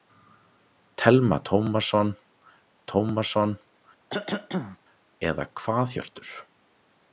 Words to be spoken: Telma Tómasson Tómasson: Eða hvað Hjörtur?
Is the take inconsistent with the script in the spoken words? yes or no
no